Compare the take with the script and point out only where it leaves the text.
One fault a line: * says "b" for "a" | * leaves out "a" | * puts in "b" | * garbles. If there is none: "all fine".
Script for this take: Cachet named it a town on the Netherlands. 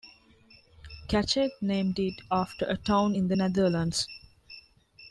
* puts in "after"
* says "in" for "on"